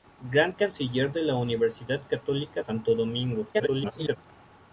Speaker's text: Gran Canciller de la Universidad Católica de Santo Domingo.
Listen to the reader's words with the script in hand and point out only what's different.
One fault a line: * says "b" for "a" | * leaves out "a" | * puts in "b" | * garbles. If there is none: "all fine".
* leaves out "de"
* garbles